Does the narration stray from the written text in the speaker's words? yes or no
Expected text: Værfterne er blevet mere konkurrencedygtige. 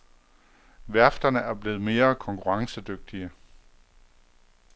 no